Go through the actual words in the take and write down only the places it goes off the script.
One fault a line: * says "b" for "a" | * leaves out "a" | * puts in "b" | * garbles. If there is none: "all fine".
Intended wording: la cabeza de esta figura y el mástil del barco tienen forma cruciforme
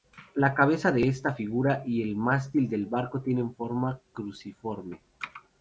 all fine